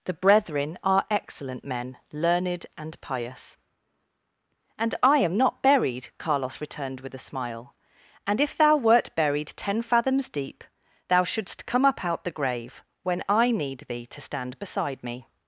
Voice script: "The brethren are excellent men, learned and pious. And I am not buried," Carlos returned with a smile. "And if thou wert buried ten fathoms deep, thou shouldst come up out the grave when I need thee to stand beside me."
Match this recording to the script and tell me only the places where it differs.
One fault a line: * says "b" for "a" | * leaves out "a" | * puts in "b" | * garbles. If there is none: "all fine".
all fine